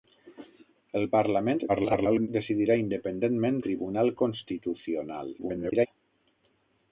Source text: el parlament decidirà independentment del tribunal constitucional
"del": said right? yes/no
no